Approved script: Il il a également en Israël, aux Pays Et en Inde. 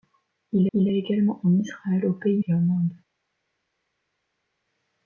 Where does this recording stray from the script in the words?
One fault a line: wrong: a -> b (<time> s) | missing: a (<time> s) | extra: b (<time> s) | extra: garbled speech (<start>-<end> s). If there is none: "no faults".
no faults